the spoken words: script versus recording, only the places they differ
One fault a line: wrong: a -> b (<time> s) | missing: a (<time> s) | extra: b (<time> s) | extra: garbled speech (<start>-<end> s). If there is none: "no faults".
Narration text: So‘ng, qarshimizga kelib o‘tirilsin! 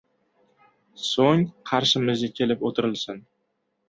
no faults